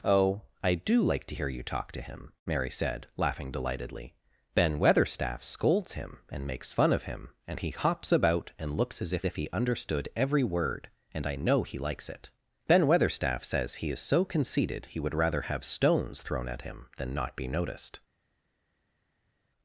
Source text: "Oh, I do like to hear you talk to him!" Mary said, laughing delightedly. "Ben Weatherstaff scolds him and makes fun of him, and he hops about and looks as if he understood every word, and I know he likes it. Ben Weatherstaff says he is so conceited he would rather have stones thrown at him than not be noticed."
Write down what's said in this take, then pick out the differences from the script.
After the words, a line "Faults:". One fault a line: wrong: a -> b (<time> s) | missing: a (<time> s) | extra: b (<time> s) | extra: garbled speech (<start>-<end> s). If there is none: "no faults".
"Oh, I do like to hear you talk to him!" Mary said, laughing delightedly. "Ben Weatherstaff scolds him and makes fun of him, and he hops about and looks as if if he understood every word, and I know he likes it. Ben Weatherstaff says he is so conceited he would rather have stones thrown at him than not be noticed."
Faults:
extra: if (9.2 s)